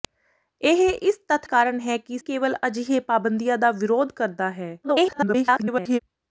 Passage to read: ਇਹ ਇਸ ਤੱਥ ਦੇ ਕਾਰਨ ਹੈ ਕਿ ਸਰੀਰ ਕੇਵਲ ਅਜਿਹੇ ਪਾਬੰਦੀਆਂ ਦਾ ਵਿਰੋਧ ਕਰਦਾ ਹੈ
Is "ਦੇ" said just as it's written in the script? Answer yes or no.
no